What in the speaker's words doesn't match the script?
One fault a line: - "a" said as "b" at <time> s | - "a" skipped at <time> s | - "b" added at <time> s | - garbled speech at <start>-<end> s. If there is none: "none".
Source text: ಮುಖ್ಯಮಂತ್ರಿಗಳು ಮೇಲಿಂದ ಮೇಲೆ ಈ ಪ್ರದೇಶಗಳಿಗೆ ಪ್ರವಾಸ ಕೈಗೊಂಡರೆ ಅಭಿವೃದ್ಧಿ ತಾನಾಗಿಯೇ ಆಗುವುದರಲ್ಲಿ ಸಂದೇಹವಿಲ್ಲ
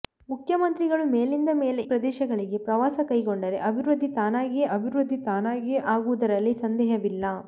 - "ಈ" skipped at 1.8 s
- "ಅಭಿವೃದ್ಧಿ ತಾನಾಗಿಯೇ" added at 4.8 s